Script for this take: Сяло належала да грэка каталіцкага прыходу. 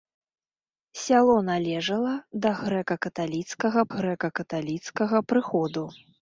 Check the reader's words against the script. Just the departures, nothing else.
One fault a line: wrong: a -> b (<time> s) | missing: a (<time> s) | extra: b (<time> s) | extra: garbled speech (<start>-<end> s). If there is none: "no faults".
extra: грэка каталіцкага (4.0 s)